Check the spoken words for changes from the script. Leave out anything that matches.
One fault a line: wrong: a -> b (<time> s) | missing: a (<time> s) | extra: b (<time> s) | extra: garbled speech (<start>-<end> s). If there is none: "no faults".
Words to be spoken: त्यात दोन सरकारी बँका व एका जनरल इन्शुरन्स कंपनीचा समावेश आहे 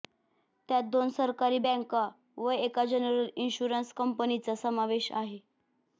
no faults